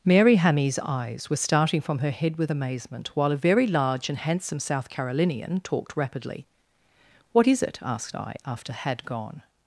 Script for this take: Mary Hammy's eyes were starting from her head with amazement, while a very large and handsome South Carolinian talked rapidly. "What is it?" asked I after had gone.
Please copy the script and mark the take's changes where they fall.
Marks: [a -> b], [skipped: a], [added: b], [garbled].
Mary Hammy's eyes were starting from her head with amazement, while a very large and handsome South Carolinian talked rapidly. "What is it?" asked I after had gone.